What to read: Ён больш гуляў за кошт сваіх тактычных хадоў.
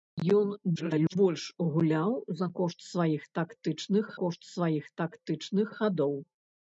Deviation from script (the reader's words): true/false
true